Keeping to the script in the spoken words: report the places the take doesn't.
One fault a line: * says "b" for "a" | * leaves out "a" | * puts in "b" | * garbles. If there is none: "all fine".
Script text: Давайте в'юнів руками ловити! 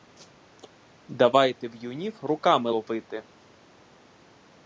all fine